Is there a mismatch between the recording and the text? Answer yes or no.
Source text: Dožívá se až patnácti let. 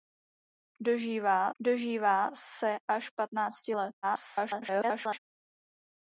yes